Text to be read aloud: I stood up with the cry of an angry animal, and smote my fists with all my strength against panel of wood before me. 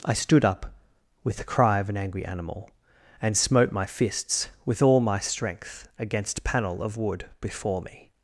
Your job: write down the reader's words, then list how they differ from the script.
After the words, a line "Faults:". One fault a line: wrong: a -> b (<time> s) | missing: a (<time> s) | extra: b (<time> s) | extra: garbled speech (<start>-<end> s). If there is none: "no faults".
I stood up with the cry of an angry animal, and smote my fists with all my strength against panel of wood before me.
Faults:
no faults